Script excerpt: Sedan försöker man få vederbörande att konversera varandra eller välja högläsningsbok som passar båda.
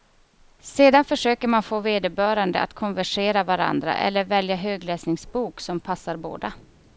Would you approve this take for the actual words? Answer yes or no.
yes